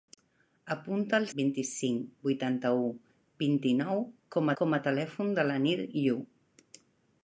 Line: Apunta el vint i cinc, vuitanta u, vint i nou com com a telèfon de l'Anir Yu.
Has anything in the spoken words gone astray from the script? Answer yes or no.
no